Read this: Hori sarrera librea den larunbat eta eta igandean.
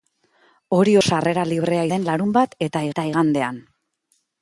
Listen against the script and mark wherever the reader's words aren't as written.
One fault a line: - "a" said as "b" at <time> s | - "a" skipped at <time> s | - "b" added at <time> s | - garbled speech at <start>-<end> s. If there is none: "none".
none